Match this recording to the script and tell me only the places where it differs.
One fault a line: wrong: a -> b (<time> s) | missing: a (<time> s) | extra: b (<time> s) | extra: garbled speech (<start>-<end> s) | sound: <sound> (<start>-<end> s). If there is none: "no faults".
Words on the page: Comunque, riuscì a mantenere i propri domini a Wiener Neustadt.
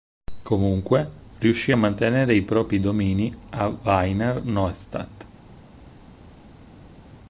no faults